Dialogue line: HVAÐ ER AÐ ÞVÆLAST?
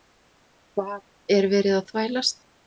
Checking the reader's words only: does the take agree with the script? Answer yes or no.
no